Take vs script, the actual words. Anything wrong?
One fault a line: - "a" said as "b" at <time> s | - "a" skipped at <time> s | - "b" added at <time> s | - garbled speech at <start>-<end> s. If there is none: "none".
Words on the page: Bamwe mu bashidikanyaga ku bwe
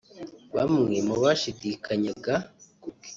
none